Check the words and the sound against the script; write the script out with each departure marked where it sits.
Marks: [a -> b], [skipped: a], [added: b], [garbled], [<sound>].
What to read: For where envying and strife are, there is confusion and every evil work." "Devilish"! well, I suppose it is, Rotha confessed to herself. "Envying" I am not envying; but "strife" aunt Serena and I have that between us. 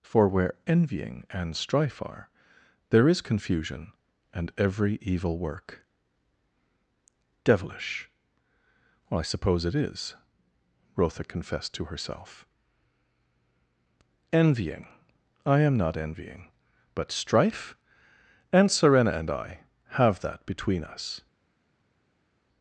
For where envying and strife are, there is confusion and every evil work." "Devilish"! well, I suppose it is, Rotha confessed to herself. "Envying" I am not envying; but "strife" aunt Serena and I have that between us.